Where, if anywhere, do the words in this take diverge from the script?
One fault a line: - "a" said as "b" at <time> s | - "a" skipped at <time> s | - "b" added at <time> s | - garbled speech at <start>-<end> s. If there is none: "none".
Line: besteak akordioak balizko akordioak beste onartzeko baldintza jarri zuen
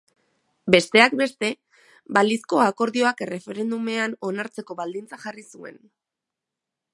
- "akordioak" said as "beste" at 1.2 s
- "beste" said as "erreferendumean" at 3.3 s